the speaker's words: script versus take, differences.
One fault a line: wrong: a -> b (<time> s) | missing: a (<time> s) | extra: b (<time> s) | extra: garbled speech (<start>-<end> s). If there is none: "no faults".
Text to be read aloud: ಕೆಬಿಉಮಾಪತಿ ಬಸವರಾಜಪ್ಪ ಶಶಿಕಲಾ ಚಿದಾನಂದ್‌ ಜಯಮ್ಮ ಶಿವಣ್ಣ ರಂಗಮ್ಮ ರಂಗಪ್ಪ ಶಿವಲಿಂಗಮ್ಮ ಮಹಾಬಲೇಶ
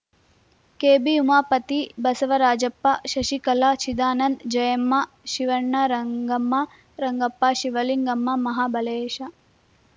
no faults